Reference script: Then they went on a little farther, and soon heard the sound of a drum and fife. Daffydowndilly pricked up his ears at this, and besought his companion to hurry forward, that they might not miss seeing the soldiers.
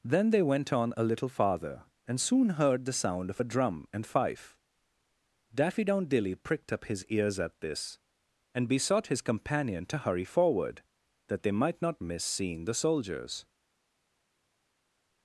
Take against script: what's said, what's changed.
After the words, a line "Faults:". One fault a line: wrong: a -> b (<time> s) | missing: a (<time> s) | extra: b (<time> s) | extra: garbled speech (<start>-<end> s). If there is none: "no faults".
Then they went on a little farther, and soon heard the sound of a drum and fife. Daffydowndilly pricked up his ears at this, and besought his companion to hurry forward, that they might not miss seeing the soldiers.
Faults:
no faults